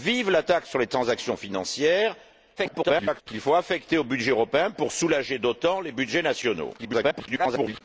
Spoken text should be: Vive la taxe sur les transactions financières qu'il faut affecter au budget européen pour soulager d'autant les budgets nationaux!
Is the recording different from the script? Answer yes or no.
yes